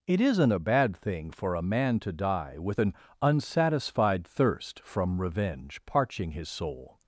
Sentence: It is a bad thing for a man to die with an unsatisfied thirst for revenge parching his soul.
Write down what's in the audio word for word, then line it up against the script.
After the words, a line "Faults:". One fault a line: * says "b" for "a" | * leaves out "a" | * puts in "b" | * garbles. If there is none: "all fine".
It isn't a bad thing for a man to die with an unsatisfied thirst from revenge parching his soul.
Faults:
* says "isn't" for "is"
* says "from" for "for"